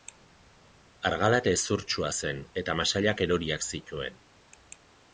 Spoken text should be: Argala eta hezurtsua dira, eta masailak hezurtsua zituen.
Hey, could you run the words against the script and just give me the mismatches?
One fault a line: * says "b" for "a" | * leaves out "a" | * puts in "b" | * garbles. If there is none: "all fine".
* says "zen" for "dira"
* says "eroriak" for "hezurtsua"